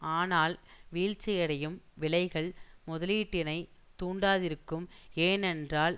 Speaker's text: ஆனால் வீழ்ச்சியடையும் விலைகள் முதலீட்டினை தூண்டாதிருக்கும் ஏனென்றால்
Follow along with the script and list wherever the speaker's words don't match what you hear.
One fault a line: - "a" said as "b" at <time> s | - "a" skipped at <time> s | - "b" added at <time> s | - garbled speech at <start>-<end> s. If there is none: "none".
none